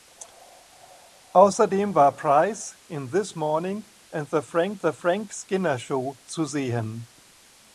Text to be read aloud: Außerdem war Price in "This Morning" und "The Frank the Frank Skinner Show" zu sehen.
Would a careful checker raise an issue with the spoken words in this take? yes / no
no